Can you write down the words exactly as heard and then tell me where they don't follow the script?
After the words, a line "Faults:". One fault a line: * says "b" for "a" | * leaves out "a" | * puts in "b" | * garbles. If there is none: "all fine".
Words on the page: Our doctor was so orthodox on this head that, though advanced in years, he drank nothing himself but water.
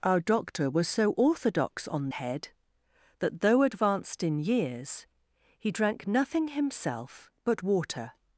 Our doctor was so orthodox on head that, though advanced in years, he drank nothing himself but water.
Faults:
* leaves out "this"